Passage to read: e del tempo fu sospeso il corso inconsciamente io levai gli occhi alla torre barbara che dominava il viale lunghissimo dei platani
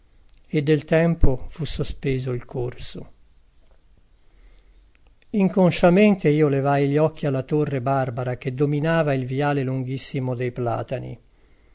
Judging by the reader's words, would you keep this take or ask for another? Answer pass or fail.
pass